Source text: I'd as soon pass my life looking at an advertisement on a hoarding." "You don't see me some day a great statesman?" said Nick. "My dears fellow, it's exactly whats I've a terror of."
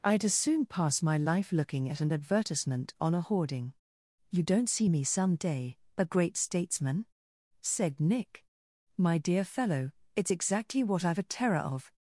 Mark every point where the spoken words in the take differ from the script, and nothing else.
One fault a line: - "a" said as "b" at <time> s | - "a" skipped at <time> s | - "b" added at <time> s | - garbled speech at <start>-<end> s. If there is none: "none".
- "dears" said as "dear" at 9.2 s
- "whats" said as "what" at 10.8 s